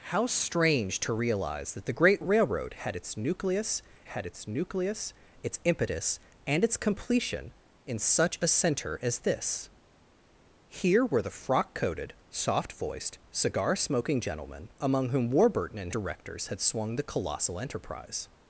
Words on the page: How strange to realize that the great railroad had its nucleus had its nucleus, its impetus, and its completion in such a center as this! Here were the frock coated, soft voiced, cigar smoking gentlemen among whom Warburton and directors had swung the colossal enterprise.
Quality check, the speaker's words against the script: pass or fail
pass